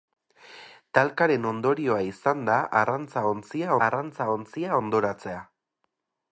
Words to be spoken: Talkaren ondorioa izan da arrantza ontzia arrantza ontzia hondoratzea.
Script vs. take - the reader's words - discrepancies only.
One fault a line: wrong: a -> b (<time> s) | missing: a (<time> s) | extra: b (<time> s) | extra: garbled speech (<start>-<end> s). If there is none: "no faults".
no faults